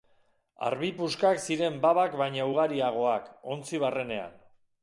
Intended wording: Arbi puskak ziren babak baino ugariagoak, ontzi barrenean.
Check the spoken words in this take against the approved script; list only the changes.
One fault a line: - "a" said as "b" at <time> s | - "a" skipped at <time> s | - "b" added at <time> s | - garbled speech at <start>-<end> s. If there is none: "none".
none